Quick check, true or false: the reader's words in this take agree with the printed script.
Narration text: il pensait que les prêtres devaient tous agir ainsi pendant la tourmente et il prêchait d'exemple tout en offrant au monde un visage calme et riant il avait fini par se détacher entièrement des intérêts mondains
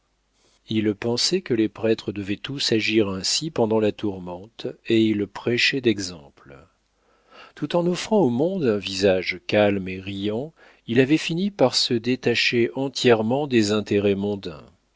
true